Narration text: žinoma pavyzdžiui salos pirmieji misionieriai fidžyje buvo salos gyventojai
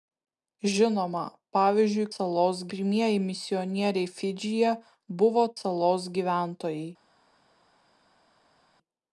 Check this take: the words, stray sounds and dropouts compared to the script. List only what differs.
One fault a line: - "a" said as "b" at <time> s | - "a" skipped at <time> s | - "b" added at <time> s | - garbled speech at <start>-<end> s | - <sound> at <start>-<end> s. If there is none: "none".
none